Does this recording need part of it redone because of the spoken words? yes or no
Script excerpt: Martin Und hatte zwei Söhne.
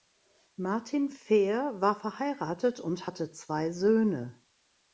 yes